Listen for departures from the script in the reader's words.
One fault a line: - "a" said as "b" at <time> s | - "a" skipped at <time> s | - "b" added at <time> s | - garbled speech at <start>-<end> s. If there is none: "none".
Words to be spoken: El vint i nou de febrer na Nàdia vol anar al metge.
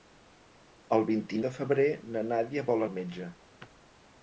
- "nou" skipped at 1.4 s
- "anar" skipped at 2.9 s